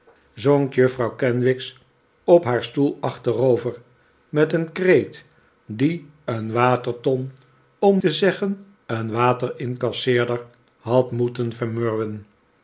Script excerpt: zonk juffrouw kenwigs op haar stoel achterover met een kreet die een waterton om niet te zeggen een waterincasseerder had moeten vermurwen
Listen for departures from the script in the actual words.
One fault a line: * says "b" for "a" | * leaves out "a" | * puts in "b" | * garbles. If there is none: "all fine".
* leaves out "niet"